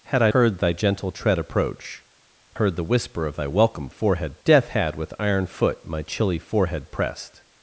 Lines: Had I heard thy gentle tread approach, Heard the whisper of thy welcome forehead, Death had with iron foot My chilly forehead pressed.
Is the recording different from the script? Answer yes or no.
no